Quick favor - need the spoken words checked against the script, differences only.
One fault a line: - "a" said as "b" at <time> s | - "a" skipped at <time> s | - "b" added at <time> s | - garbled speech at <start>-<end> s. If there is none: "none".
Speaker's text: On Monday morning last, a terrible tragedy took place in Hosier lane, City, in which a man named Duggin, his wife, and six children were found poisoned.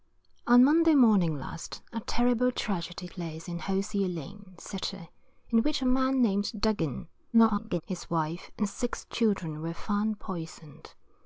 - "took" skipped at 3.1 s
- garbled speech at 7.3-7.8 s